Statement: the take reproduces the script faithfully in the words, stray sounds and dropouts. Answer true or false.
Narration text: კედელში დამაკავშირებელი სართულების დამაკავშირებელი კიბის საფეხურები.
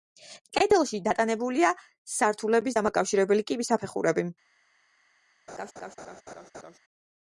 false